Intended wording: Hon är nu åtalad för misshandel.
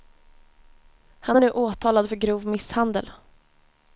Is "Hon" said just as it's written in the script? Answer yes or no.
no